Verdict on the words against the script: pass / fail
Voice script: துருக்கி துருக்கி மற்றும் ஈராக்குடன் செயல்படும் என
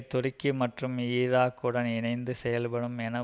fail